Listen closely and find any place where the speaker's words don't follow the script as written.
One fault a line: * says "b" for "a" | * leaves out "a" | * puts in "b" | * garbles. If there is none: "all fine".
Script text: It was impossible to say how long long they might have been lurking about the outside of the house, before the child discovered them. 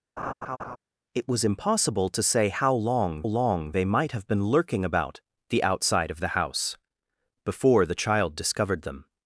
all fine